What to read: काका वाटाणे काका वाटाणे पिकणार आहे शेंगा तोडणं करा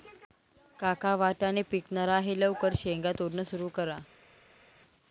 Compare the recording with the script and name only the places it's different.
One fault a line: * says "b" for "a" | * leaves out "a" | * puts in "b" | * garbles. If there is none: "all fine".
* leaves out "काका वाटाणे"
* puts in "लवकर"
* puts in "सुरू"